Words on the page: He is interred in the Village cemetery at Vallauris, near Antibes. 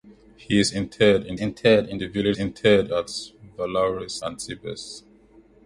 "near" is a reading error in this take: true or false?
true